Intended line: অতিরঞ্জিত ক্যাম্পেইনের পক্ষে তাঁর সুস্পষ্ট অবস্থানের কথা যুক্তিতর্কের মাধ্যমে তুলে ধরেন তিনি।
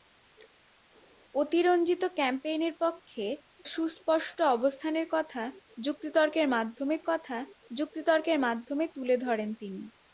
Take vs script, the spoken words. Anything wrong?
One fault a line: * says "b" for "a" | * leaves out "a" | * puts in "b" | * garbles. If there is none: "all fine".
* leaves out "তাঁর"
* puts in "কথা যুক্তিতর্কের মাধ্যমে"